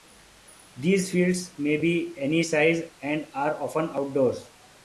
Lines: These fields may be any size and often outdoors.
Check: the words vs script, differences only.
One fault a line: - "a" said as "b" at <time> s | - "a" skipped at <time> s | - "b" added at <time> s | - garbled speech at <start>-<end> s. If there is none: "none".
- "are" added at 3.3 s